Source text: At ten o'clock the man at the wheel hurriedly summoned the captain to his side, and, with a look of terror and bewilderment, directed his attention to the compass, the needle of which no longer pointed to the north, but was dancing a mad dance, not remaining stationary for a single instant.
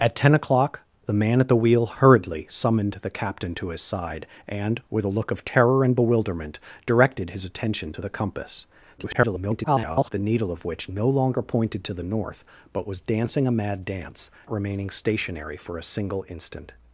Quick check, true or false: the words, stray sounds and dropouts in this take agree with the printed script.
false